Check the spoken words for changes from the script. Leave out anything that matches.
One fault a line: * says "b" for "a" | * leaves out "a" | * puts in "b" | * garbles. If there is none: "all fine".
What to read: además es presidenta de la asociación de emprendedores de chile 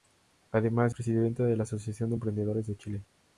* leaves out "es"